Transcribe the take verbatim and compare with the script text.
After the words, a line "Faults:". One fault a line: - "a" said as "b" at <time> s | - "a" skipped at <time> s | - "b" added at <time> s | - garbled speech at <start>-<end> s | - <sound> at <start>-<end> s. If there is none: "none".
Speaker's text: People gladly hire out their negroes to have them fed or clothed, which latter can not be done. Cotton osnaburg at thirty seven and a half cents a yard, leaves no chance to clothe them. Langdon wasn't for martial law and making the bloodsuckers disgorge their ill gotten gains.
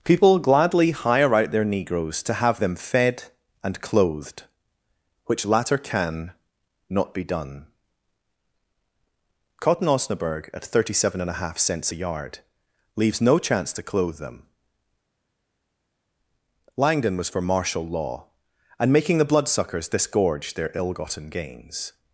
People gladly hire out their negroes to have them fed and clothed, which latter can not be done. Cotton osnaburg at thirty seven and a half cents a yard, leaves no chance to clothe them. Langdon was for martial law and making the bloodsuckers disgorge their ill gotten gains.
Faults:
- "or" said as "and" at 3.6 s
- "wasn't" said as "was" at 17.1 s